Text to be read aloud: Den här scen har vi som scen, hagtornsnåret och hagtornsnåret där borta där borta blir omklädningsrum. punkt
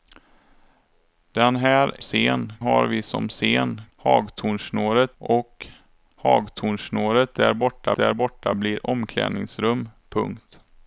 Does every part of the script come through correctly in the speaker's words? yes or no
yes